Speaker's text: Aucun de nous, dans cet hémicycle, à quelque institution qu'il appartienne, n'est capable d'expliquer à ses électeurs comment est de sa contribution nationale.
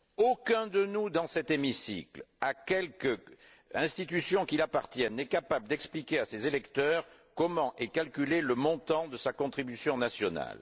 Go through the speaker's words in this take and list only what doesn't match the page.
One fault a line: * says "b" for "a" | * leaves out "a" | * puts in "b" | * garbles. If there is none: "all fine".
* puts in "calculé le montant"